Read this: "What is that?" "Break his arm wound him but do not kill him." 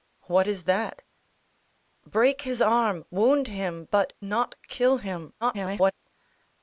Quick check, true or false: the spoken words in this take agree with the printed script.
false